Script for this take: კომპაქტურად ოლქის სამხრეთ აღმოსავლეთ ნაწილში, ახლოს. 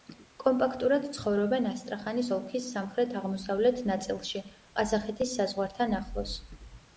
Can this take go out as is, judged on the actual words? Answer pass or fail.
fail